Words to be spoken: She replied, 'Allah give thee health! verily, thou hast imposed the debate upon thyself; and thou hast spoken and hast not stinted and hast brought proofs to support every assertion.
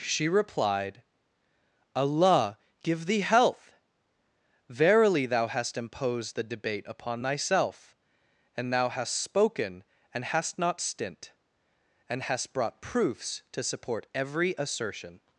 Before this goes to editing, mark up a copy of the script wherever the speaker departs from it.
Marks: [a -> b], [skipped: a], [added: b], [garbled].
She replied, 'Allah give thee health! verily, thou hast imposed the debate upon thyself; and thou hast spoken and hast not [stinted -> stint] and hast brought proofs to support every assertion.